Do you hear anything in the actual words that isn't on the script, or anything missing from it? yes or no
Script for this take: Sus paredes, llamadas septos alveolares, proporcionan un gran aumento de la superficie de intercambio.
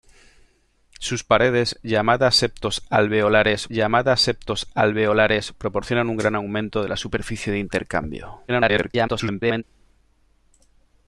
yes